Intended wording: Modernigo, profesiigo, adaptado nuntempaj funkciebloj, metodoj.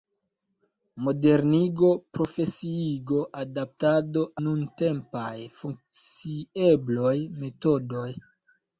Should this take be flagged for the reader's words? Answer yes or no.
no